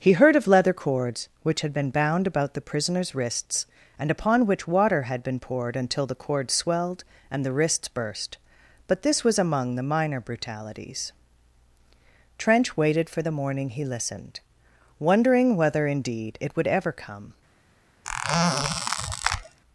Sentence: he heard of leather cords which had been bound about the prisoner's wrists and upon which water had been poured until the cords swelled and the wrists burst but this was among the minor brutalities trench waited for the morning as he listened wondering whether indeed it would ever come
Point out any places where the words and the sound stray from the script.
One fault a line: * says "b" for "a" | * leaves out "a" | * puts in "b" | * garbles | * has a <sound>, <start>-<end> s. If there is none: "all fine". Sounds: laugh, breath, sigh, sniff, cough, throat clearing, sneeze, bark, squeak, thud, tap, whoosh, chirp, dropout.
* leaves out "as"
* has a squeak, 18.0-19.6 s